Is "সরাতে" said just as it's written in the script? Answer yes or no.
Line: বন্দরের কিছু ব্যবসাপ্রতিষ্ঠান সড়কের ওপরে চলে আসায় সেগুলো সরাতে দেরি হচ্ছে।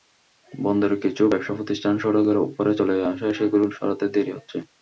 yes